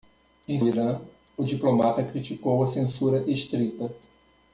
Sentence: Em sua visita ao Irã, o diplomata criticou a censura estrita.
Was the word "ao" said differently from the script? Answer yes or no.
yes